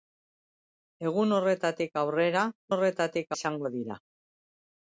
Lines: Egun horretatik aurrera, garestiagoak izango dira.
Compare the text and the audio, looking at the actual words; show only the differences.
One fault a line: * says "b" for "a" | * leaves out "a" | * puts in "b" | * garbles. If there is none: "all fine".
* says "horretatik" for "garestiagoak"